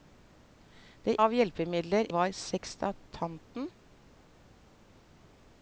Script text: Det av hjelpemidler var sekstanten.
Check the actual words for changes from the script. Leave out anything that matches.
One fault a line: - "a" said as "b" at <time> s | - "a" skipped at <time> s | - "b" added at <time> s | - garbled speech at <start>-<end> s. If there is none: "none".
none